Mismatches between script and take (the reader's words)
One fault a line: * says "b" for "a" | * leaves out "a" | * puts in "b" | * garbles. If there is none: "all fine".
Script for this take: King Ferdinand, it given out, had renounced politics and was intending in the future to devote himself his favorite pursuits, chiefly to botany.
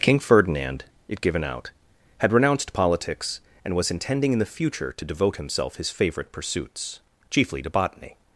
all fine